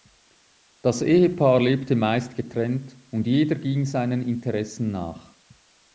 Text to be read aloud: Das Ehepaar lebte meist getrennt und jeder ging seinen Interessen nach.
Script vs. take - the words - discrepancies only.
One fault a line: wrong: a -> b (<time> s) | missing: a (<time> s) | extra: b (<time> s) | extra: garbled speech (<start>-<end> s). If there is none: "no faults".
no faults